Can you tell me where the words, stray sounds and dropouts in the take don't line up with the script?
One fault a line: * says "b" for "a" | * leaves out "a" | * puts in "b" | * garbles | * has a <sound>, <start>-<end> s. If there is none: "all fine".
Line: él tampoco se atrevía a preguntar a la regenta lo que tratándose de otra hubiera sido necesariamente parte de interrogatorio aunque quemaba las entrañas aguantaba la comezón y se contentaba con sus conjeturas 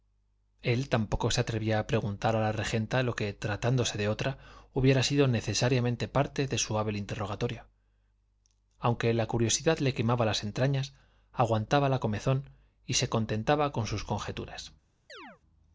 * puts in "su hábil"
* puts in "la curiosidad le"
* has a chirp, 15.1-15.4 s